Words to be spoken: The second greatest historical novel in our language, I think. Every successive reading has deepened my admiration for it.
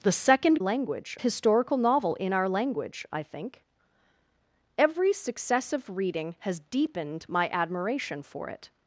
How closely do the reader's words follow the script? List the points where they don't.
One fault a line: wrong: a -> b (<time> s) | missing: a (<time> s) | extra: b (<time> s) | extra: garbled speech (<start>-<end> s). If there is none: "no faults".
wrong: greatest -> language (0.6 s)